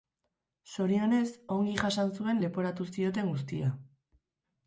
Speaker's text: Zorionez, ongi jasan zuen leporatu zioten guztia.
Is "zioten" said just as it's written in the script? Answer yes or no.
yes